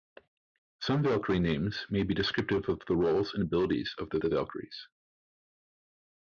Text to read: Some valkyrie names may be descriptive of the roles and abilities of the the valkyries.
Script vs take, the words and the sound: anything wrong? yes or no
no